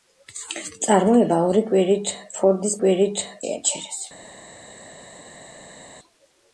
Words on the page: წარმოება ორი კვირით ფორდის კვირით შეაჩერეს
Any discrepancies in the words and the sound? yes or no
no